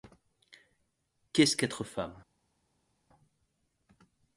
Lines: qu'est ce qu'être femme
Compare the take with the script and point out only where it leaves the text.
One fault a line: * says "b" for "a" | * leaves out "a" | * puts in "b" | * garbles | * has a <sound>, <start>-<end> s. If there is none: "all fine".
all fine